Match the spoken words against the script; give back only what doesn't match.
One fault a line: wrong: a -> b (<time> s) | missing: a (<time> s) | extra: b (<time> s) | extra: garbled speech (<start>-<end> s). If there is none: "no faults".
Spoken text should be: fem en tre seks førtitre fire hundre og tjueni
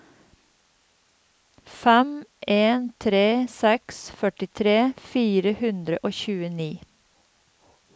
no faults